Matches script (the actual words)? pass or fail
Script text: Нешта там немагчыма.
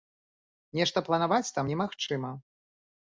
fail